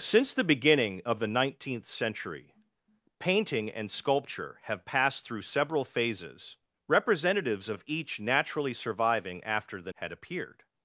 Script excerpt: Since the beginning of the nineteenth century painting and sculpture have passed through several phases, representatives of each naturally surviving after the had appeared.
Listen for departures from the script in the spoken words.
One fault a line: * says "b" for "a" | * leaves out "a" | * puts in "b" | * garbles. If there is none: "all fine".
all fine